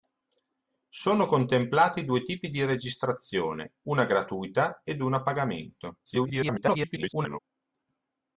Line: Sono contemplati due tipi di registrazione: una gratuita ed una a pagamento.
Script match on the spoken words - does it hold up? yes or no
no